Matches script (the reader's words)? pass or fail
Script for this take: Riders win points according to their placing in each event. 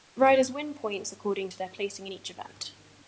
pass